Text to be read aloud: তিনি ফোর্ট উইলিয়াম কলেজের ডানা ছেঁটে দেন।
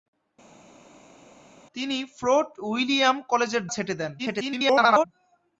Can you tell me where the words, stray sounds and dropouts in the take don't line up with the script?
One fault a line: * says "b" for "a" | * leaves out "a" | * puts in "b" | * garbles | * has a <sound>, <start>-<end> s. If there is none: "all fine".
* leaves out "ডানা"
* garbles